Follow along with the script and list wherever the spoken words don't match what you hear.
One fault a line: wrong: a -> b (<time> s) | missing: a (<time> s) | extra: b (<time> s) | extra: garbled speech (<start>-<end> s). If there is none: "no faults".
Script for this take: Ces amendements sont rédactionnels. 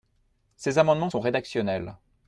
no faults